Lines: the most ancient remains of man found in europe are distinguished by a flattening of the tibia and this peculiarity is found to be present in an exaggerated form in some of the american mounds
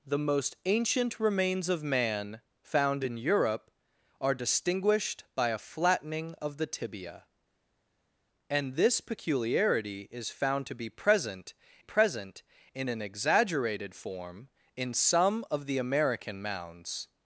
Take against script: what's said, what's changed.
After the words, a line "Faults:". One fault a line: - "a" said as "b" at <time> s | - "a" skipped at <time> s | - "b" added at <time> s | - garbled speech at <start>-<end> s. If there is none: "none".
the most ancient remains of man found in europe are distinguished by a flattening of the tibia and this peculiarity is found to be present present in an exaggerated form in some of the american mounds
Faults:
- "present" added at 11.8 s